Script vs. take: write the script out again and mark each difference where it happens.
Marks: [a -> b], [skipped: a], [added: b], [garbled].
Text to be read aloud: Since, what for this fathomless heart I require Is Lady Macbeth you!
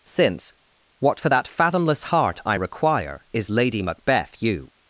Since, what for [this -> that] fathomless heart I require Is Lady Macbeth you!